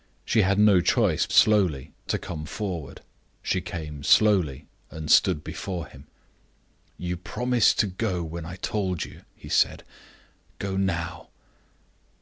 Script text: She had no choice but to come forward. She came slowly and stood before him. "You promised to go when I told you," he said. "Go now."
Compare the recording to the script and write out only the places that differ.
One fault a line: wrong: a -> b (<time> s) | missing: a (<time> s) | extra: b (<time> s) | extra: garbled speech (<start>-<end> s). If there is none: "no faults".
wrong: but -> slowly (1.3 s)